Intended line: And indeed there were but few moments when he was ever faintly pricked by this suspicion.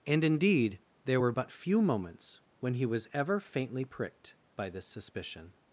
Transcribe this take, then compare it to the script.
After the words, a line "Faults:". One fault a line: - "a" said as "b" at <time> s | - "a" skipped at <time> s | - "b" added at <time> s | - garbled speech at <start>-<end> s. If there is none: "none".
And indeed there were but few moments when he was ever faintly pricked by this suspicion.
Faults:
none